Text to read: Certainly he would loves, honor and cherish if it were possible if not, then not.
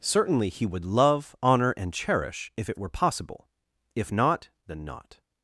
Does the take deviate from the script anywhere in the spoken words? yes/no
yes